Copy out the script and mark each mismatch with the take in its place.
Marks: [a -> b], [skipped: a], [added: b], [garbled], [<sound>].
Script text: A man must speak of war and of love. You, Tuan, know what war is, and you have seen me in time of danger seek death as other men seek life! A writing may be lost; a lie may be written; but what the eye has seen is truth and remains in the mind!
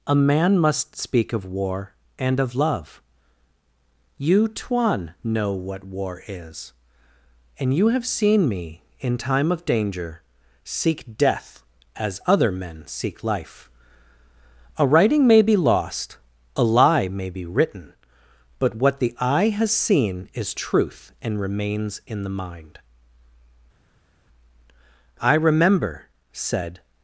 A man must speak of war and of love. You, Tuan, know what war is, and you have seen me in time of danger seek death as other men seek life! A writing may be lost; a lie may be written; but what the eye has seen is truth and remains in the mind! [added: I remember said]